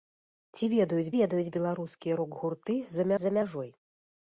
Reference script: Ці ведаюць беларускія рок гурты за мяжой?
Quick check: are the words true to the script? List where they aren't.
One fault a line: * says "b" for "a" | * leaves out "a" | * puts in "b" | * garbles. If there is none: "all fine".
* puts in "ведаюць"
* puts in "за"